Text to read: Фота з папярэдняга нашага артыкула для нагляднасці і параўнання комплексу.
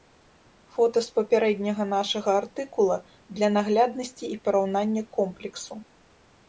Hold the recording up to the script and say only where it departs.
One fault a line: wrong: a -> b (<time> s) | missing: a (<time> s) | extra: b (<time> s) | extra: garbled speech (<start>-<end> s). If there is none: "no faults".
no faults